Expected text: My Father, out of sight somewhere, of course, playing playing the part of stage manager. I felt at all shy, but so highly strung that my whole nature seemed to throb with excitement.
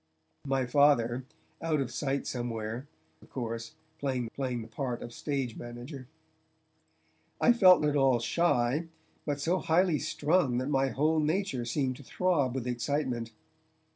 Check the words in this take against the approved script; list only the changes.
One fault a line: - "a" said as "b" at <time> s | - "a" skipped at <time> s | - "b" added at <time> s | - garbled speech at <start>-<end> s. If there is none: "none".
none